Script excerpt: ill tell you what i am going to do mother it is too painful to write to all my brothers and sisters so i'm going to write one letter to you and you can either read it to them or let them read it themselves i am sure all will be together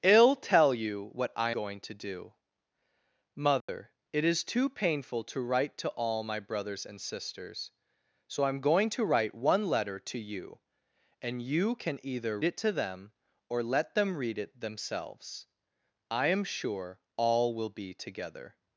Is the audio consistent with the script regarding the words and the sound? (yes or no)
no